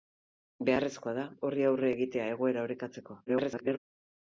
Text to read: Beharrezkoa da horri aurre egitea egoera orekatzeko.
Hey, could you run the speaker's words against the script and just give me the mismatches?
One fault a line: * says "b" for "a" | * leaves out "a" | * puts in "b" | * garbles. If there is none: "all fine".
* garbles